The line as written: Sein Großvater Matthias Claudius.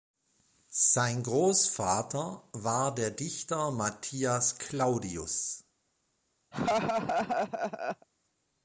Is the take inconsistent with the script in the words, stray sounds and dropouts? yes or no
yes